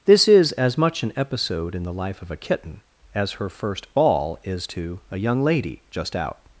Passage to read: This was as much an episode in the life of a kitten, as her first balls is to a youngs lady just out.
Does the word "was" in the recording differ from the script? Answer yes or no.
yes